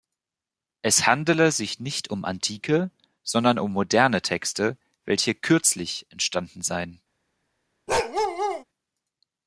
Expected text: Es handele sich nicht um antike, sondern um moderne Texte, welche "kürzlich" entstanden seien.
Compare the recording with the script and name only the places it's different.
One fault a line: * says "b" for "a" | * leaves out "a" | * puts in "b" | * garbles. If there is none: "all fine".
all fine